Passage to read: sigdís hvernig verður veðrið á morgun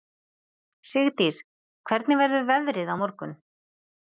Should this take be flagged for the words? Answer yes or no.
no